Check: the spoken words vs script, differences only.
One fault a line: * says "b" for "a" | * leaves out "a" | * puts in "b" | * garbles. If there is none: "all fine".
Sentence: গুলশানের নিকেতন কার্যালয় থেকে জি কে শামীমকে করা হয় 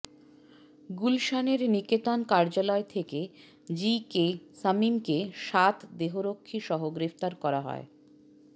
* puts in "সাত দেহরক্ষীসহ গ্রেফতার"